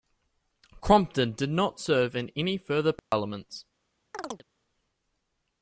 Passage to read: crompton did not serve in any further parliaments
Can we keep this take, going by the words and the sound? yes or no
no